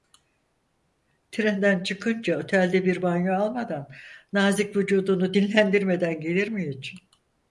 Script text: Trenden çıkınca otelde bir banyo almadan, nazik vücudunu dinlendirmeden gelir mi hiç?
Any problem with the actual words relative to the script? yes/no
no